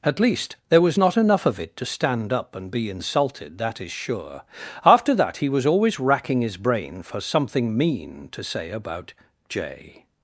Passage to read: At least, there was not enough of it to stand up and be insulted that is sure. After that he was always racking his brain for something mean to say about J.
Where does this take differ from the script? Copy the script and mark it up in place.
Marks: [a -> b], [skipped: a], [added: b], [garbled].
At least, there was not enough of it to stand up and be insulted that is sure. After that he was always racking his brain for something mean to say about J.